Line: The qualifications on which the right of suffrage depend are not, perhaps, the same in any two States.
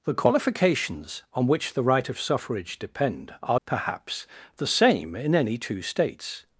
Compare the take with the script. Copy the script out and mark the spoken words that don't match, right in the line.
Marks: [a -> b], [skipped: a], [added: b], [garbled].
The qualifications on which the right of suffrage depend are [skipped: not,] perhaps, the same in any two States.